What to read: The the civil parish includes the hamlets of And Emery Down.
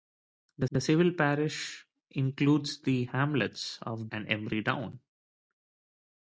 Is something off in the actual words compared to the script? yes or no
no